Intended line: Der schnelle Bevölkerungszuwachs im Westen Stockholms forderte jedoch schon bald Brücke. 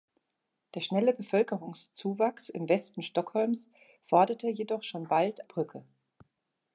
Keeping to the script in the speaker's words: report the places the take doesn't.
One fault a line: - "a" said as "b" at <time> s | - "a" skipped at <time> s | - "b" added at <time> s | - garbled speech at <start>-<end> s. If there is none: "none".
none